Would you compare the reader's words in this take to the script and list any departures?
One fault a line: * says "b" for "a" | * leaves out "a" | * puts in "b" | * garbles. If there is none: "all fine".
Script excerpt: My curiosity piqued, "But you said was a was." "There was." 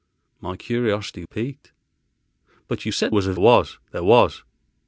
all fine